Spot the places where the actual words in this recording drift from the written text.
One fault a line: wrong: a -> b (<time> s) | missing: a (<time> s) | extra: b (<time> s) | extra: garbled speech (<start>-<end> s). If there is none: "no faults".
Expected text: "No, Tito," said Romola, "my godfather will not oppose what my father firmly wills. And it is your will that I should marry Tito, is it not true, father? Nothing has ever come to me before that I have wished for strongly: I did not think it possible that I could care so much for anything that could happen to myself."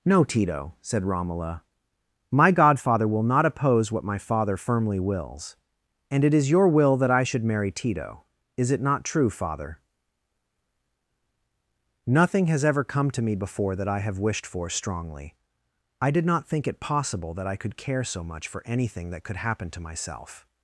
no faults